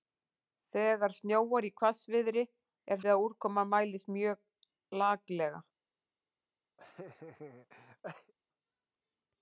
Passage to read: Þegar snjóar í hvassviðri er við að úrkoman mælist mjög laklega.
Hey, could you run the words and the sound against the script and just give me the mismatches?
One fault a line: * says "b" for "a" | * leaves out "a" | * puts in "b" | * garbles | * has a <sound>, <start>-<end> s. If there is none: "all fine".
* has a laugh, 6.8-8.3 s